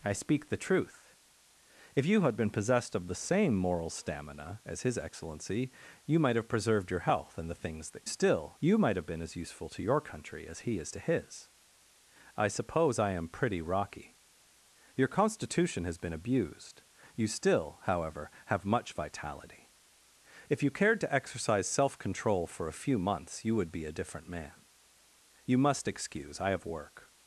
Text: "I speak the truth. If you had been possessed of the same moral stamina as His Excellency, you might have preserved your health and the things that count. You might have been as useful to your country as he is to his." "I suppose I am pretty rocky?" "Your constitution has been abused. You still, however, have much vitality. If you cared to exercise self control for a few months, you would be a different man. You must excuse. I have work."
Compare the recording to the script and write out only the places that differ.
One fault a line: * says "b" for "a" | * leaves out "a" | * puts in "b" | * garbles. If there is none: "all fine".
* says "still" for "count"